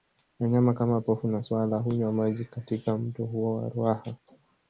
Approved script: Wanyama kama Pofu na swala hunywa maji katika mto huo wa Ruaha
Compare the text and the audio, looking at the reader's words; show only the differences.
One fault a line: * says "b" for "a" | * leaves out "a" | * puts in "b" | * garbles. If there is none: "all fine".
all fine